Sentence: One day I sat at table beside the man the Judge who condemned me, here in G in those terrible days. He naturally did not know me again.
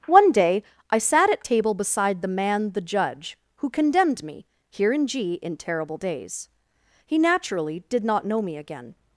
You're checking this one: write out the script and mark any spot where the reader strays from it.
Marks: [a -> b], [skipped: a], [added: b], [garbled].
One day I sat at table beside the man the Judge who condemned me, here in G in [skipped: those] terrible days. He naturally did not know me again.